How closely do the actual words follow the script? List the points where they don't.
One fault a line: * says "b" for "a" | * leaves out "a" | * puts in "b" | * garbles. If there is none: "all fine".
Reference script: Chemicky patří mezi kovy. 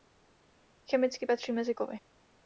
all fine